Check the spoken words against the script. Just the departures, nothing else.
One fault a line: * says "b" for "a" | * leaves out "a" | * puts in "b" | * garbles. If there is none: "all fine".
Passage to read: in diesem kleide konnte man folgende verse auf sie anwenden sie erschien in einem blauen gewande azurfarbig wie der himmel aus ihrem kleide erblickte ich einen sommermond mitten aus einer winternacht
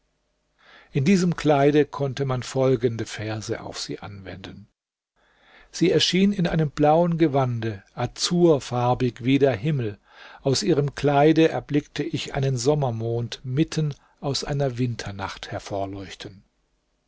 all fine